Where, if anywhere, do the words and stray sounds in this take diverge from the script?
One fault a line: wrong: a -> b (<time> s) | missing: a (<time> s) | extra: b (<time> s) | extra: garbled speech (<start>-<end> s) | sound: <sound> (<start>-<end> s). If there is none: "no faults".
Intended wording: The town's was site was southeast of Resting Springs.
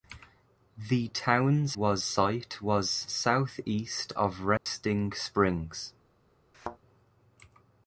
sound: dropout (4.6-4.7 s)
sound: thud (6.5-6.8 s)